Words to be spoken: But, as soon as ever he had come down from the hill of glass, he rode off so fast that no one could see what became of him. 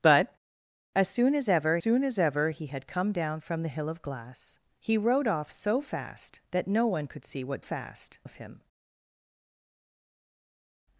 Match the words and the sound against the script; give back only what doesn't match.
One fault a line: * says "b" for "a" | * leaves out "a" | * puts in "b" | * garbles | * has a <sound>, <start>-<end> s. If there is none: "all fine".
* puts in "soon as ever"
* says "fast" for "became"